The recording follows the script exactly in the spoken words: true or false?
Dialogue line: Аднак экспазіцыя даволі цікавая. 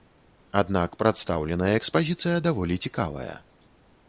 false